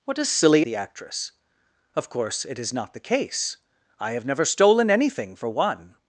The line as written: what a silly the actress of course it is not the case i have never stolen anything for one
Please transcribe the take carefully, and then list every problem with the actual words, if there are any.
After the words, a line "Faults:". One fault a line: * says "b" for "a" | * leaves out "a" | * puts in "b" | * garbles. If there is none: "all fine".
what a silly the actress of course it is not the case i have never stolen anything for one
Faults:
all fine